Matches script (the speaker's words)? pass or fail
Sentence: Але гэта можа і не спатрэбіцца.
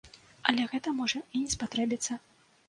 pass